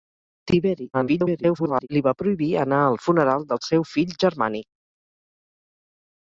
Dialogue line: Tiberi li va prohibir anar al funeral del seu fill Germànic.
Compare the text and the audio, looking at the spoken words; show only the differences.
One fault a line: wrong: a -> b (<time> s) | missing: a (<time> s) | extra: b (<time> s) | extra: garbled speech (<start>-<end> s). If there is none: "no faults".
extra: garbled speech (0.9-1.9 s)